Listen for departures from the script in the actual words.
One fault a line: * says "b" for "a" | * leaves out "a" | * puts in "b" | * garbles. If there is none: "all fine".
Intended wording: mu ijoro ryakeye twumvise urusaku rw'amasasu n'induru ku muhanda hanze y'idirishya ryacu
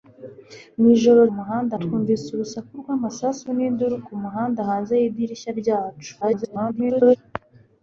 * says "muhanda" for "ryakeye"
* garbles